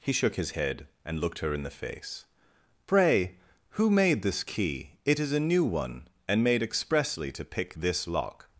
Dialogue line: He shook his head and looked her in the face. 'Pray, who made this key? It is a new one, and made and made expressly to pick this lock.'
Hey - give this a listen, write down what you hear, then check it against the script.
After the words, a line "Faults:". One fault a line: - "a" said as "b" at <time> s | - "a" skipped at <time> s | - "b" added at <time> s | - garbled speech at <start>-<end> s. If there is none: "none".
He shook his head and looked her in the face. 'Pray, who made this key? It is a new one, and made expressly to pick this lock.'
Faults:
- "and made" skipped at 6.6 s